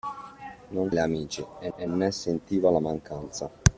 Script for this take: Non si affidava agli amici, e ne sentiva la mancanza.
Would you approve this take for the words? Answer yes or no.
no